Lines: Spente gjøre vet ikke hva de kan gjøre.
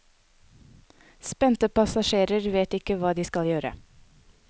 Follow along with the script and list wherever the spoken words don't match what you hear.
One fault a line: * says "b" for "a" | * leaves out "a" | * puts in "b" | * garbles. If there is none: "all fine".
* says "passasjerer" for "gjøre"
* says "skal" for "kan"